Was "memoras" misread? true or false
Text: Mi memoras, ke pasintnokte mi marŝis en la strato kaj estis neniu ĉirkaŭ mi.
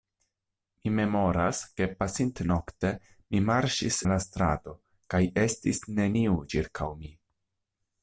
false